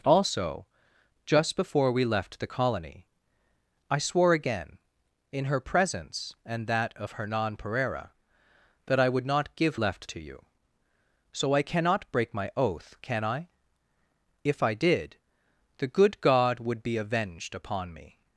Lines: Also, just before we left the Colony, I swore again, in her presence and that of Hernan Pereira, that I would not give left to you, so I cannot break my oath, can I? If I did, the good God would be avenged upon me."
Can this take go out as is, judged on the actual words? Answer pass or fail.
pass